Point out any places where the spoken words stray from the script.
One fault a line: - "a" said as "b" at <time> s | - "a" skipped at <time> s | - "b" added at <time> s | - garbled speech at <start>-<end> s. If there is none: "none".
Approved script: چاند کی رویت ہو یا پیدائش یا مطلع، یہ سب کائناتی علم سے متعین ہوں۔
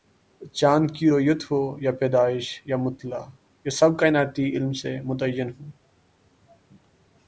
none